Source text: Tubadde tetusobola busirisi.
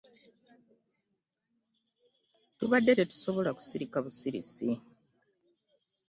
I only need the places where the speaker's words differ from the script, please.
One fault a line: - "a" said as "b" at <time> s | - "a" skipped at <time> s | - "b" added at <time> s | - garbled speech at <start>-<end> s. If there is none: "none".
- "kusirika" added at 3.6 s